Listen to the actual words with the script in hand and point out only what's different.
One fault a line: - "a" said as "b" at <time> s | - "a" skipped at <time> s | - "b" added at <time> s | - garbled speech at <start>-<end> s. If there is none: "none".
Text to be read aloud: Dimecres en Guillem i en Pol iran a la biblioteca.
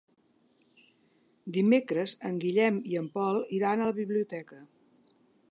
none